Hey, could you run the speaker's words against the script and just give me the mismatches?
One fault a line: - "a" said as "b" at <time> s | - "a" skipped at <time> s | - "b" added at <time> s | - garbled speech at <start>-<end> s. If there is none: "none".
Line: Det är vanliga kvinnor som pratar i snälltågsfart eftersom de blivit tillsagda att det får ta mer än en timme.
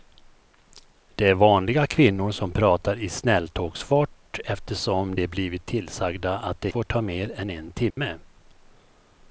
none